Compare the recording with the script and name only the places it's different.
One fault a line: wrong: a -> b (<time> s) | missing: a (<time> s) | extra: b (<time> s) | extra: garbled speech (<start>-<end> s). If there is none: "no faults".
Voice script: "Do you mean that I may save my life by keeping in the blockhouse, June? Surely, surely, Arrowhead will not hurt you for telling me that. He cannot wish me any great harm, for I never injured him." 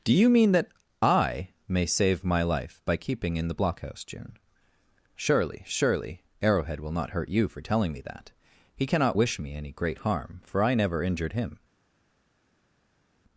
no faults